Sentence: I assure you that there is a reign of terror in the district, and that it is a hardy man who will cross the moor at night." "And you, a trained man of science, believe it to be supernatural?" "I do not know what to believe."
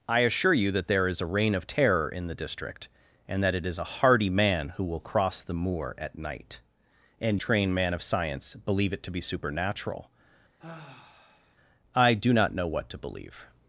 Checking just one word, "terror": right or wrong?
right